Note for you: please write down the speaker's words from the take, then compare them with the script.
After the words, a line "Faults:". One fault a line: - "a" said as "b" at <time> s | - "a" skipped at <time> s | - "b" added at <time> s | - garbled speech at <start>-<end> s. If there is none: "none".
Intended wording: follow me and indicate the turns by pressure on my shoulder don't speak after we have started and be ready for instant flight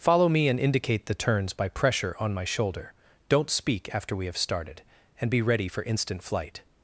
follow me and indicate the turns by pressure on my shoulder don't speak after we have started and be ready for instant flight
Faults:
none